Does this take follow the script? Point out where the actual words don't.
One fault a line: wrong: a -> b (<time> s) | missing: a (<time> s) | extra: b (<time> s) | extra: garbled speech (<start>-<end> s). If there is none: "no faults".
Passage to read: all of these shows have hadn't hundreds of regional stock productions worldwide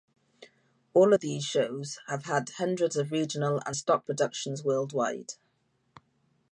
wrong: hadn't -> had (2.2 s)
extra: and (3.7 s)